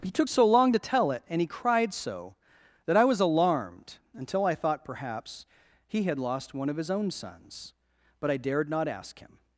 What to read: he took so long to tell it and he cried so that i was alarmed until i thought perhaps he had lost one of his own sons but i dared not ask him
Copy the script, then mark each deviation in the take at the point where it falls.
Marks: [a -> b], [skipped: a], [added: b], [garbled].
he took so long to tell it and he cried so that i was alarmed until i thought perhaps he had lost one of his own sons but i dared not ask him